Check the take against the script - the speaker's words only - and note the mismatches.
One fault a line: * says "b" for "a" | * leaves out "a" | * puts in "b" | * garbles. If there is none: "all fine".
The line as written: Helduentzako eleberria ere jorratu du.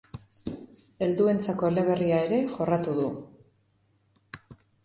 all fine